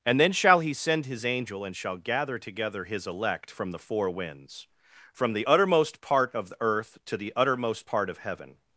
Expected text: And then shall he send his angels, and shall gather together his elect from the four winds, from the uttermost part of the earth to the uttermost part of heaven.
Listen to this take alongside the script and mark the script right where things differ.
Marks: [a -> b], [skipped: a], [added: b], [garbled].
And then shall he send his [angels, -> angel] and shall gather together his elect from the four winds, from the uttermost part of the earth to the uttermost part of heaven.